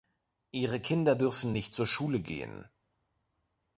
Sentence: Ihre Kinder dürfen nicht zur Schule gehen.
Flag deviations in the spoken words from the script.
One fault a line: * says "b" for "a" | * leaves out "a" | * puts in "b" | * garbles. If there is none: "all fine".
all fine